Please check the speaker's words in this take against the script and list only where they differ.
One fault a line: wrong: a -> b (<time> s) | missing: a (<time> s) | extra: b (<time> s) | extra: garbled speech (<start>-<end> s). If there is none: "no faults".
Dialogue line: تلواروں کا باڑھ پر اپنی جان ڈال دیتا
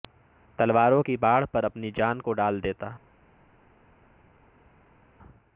wrong: کا -> کی (1.0 s)
extra: کو (2.2 s)